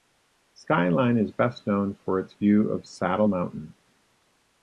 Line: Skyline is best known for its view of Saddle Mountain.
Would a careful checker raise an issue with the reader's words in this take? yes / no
no